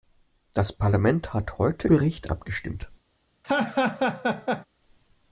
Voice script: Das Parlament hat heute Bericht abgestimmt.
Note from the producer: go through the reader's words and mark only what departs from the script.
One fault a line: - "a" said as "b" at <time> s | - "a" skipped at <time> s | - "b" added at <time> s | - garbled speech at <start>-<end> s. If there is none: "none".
none